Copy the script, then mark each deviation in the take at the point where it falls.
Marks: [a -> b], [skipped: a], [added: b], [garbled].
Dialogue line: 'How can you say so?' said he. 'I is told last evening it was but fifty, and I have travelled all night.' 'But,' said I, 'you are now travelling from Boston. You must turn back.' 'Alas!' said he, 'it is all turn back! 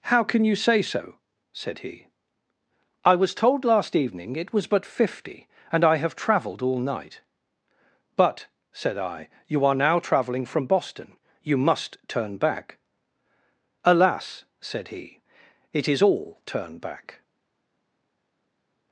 'How can you say so?' said he. 'I [is -> was] told last evening it was but fifty, and I have travelled all night.' 'But,' said I, 'you are now travelling from Boston. You must turn back.' 'Alas!' said he, 'it is all turn back!